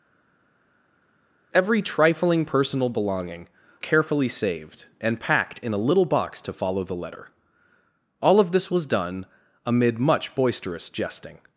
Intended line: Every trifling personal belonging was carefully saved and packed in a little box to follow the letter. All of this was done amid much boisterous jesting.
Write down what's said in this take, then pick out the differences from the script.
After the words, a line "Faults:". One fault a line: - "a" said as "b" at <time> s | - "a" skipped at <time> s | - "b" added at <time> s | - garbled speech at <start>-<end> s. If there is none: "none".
Every trifling personal belonging carefully saved and packed in a little box to follow the letter. All of this was done amid much boisterous jesting.
Faults:
- "was" skipped at 3.5 s